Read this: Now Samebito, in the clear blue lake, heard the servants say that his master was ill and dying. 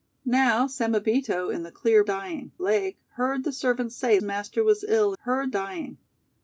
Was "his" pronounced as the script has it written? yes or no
no